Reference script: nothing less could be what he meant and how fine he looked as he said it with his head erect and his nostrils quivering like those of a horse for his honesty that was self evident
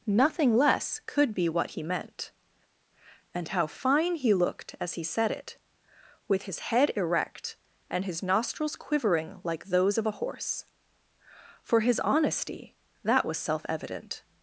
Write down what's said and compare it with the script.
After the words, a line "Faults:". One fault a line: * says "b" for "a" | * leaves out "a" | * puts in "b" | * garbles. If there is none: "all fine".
nothing less could be what he meant and how fine he looked as he said it with his head erect and his nostrils quivering like those of a horse for his honesty that was self evident
Faults:
all fine